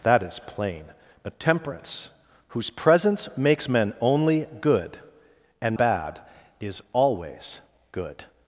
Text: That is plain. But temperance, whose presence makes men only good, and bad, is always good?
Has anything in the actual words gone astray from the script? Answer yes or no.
no